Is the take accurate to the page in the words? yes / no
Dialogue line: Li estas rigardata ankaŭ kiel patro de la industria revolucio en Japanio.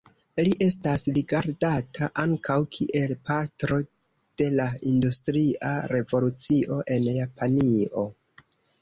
yes